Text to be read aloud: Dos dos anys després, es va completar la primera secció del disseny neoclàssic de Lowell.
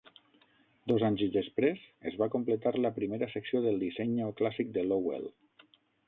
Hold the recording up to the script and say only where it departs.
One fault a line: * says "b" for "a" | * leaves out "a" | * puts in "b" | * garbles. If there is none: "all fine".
* leaves out "dos"